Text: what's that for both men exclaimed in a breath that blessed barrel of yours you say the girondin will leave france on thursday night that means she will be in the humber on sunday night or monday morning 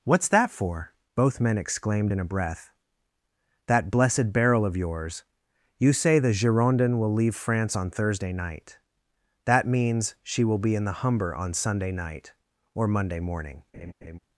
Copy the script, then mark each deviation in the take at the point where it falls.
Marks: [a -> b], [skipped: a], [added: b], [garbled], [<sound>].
what's that for both men exclaimed in a breath that blessed barrel of yours you say the girondin will leave france on thursday night that means she will be in the humber on sunday night or monday morning [laugh]